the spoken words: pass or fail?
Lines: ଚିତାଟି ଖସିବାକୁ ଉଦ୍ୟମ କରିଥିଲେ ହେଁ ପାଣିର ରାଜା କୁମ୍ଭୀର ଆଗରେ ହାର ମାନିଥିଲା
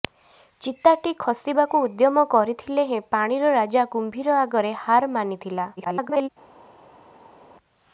fail